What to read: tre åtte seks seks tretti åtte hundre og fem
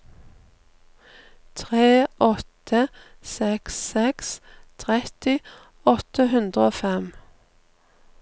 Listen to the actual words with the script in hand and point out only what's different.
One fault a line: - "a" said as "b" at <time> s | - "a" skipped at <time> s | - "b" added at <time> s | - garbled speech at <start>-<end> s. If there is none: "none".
none